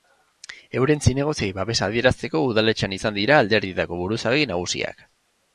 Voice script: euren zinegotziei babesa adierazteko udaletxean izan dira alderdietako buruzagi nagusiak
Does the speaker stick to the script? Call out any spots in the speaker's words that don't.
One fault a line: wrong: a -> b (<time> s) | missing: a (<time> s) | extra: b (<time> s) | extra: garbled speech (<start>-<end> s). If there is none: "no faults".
no faults